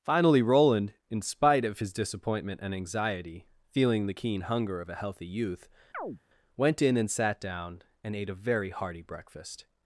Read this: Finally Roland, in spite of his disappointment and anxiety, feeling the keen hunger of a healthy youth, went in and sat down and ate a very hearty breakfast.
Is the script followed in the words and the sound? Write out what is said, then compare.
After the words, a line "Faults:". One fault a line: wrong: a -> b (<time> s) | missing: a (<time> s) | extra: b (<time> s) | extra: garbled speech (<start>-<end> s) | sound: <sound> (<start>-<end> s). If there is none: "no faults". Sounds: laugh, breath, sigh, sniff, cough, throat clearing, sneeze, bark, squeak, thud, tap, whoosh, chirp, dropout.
Finally Roland, in spite of his disappointment and anxiety, feeling the keen hunger of a healthy youth, went in and sat down and ate a very hearty breakfast.
Faults:
sound: chirp (5.9-6.2 s)